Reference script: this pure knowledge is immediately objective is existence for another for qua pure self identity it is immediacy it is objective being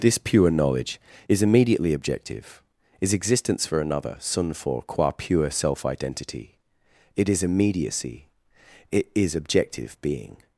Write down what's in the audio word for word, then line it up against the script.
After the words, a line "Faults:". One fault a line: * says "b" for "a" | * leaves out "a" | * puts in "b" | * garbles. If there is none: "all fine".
this pure knowledge is immediately objective is existence for another sun for qua pure self identity it is immediacy it is objective being
Faults:
* puts in "sun"